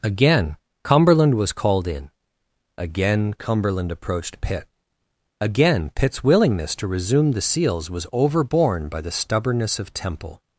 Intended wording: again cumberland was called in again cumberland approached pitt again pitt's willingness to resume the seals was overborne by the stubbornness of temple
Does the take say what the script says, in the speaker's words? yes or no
yes